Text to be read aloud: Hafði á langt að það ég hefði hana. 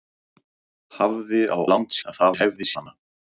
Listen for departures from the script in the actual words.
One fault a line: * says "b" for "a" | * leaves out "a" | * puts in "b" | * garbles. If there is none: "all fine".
all fine